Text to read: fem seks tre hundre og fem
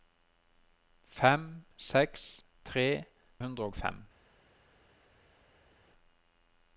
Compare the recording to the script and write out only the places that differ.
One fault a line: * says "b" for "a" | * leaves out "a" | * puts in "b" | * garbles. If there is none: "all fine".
all fine